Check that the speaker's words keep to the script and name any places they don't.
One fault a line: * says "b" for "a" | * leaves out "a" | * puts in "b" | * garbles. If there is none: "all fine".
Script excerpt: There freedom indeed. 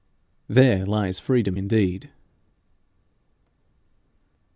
* puts in "lies"